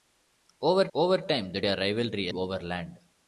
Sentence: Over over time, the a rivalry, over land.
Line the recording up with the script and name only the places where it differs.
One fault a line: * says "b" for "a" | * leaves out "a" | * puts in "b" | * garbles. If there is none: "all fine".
all fine